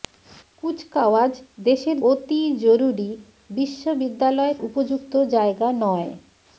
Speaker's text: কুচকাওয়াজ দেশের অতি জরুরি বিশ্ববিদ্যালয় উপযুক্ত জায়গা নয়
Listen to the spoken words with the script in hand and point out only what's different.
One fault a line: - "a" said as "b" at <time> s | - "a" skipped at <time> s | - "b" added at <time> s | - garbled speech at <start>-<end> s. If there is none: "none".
none